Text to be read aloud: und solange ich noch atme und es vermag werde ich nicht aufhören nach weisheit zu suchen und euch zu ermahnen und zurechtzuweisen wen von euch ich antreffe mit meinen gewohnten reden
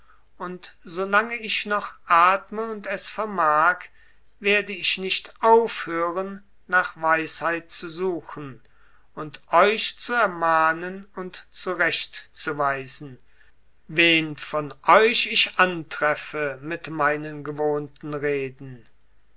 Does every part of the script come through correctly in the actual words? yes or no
yes